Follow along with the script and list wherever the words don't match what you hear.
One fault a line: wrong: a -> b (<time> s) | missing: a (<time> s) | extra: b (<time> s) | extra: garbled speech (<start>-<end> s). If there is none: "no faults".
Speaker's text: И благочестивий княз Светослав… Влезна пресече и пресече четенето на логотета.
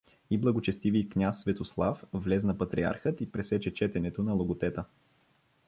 wrong: пресече -> патриархът (2.6 s)